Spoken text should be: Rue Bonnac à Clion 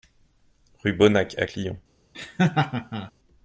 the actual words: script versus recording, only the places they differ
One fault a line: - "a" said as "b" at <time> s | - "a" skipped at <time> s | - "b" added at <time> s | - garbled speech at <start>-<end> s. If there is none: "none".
none